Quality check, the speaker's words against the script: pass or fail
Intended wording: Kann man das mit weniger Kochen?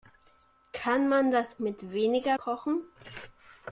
pass